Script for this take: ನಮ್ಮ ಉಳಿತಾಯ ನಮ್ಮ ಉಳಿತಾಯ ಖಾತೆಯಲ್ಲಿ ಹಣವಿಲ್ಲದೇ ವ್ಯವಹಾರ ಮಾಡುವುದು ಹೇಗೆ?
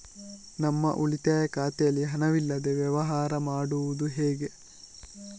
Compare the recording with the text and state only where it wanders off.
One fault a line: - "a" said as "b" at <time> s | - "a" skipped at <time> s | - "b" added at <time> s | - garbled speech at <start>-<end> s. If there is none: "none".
- "ನಮ್ಮ ಉಳಿತಾಯ" skipped at 1.5 s